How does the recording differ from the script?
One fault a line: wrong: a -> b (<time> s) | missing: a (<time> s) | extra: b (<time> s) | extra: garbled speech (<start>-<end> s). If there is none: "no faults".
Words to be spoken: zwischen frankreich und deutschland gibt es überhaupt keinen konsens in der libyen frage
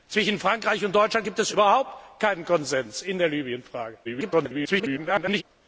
extra: garbled speech (4.0-5.4 s)